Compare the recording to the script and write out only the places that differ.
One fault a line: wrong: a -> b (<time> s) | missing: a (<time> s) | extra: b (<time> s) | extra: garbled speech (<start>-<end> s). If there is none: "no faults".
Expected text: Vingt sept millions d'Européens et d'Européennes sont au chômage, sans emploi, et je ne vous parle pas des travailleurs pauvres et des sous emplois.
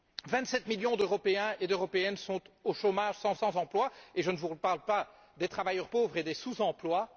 extra: sans (3.3 s)